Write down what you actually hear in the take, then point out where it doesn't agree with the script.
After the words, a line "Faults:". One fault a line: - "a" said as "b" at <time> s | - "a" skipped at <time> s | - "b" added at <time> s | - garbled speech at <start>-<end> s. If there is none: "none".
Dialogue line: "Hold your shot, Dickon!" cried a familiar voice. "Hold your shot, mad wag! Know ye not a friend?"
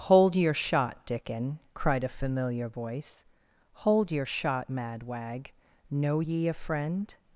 "Hold your shot, Dickon!" cried a familiar voice. "Hold your shot, mad wag! Know ye a friend?"
Faults:
- "not" skipped at 6.5 s